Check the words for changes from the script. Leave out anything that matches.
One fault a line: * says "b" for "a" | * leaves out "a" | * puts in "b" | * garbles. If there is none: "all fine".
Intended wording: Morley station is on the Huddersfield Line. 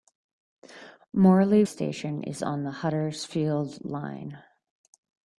all fine